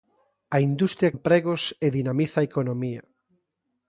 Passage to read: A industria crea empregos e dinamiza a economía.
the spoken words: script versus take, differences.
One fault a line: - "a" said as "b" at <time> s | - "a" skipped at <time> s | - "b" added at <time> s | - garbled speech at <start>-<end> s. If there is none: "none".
- "crea" skipped at 1.1 s